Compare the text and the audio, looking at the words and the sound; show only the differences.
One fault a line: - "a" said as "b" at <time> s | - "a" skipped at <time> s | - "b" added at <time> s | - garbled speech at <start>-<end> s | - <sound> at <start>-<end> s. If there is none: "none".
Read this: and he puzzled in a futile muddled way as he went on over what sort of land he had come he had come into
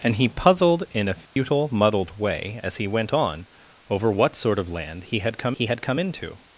- dropout at 1.3-1.4 s